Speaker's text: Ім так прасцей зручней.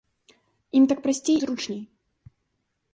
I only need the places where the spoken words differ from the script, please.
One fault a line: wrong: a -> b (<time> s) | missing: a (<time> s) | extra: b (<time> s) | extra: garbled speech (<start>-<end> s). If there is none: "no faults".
no faults